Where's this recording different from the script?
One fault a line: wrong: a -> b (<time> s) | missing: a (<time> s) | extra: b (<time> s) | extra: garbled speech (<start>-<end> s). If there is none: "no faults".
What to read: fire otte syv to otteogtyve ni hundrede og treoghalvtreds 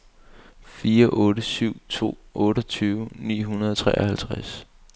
no faults